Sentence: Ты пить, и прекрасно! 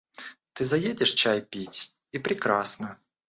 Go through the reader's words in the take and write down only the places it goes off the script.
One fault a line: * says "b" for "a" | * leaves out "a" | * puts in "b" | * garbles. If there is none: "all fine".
* puts in "заедешь чай"